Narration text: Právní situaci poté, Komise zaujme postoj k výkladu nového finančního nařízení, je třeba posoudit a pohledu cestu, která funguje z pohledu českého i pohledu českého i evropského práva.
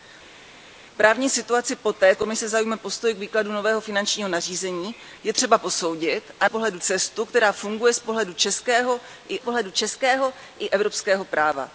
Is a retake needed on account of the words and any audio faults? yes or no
no